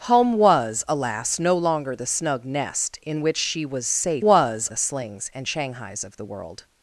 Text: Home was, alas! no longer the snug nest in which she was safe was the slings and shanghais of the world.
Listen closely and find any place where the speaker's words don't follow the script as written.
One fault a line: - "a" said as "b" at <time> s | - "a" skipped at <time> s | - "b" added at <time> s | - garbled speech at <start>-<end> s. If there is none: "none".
none